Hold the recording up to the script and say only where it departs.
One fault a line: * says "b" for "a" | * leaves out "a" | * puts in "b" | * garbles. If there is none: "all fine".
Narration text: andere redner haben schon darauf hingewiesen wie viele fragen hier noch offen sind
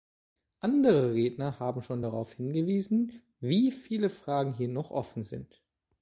all fine